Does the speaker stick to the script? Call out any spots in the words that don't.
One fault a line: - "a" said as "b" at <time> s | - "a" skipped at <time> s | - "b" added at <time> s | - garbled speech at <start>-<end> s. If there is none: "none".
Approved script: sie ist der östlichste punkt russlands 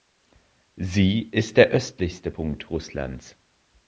none